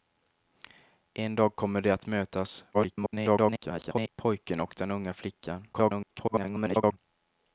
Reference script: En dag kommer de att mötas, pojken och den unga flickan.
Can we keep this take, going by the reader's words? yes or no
no